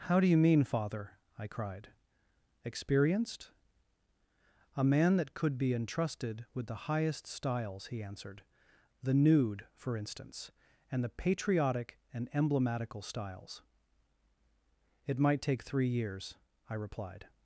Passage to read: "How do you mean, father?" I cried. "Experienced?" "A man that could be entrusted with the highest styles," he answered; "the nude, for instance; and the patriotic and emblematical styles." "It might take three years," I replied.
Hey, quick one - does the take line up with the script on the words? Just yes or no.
yes